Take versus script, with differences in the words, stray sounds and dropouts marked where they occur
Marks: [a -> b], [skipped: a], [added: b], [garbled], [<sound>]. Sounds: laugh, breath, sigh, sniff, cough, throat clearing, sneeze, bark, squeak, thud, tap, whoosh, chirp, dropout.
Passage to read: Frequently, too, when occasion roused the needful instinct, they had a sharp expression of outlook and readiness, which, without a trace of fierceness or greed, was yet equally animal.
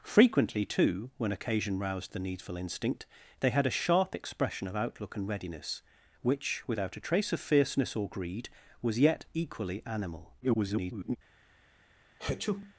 Frequently, too, when occasion roused the needful instinct, they had a sharp expression of outlook and readiness, which, without a trace of fierceness or greed, was yet equally animal. [garbled] [sneeze]